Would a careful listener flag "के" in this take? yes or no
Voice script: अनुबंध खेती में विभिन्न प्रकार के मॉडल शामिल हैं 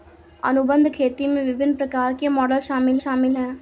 no